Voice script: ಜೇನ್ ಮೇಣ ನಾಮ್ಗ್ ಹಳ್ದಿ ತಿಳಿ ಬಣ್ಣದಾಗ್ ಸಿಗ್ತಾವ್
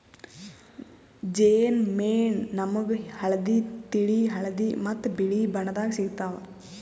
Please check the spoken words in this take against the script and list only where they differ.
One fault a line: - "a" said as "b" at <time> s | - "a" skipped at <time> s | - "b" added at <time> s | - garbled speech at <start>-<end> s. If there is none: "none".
- "ಹಳದಿ ಮತ್ತ್ ಬಿಳಿ" added at 4.3 s